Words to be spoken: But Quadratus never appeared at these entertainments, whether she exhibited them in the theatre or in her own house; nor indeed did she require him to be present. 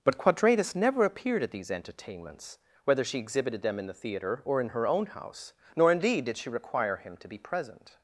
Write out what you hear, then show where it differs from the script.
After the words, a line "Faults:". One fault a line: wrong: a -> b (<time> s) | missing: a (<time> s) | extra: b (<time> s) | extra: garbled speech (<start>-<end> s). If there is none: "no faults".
But Quadratus never appeared at these entertainments, whether she exhibited them in the theatre or in her own house; nor indeed did she require him to be present.
Faults:
no faults